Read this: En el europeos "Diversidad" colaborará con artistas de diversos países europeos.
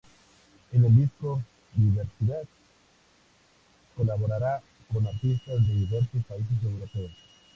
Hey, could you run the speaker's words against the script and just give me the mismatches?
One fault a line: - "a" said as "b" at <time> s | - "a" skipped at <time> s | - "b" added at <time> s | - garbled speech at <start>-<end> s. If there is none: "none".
- "europeos" said as "disco" at 0.9 s